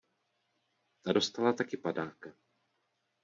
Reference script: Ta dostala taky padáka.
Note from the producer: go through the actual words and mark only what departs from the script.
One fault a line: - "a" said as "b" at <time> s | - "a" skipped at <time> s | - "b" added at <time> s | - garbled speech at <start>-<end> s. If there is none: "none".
none